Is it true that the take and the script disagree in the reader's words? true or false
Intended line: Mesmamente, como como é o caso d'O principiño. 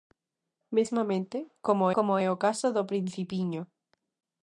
false